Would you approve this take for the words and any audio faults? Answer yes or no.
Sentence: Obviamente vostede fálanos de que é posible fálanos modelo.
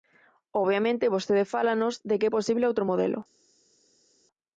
no